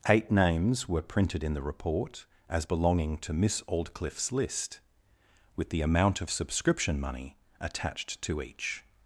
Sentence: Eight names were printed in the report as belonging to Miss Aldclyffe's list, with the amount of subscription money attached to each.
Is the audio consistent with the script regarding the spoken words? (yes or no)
yes